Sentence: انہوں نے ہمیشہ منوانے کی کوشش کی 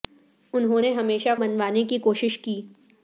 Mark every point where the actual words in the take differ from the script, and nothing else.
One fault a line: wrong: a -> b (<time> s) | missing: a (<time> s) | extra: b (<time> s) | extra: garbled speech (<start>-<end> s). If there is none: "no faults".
no faults